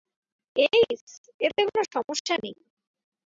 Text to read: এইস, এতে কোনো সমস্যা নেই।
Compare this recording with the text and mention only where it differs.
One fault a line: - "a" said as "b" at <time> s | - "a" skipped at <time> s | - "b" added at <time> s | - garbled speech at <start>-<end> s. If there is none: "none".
none